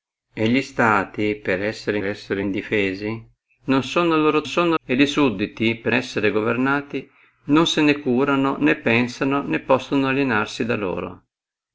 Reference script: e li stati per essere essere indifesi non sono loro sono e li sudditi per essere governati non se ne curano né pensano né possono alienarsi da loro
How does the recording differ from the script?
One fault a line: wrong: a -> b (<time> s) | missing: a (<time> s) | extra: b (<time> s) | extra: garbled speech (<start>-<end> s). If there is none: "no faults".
no faults